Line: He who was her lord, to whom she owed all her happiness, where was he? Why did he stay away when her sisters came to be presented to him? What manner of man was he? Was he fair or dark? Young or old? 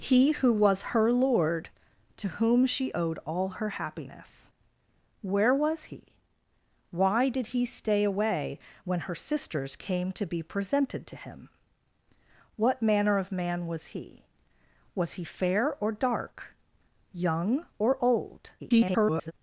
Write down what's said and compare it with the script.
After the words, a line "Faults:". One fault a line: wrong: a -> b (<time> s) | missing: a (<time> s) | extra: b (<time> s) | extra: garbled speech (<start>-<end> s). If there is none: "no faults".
He who was her lord, to whom she owed all her happiness, where was he? Why did he stay away when her sisters came to be presented to him? What manner of man was he? Was he fair or dark? Young or old? [garbled]
Faults:
extra: garbled speech (18.6-19.3 s)